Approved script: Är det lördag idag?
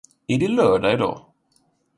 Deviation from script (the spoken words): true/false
false